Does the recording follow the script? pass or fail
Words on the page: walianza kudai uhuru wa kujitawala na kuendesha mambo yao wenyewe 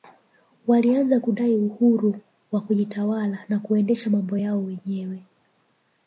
pass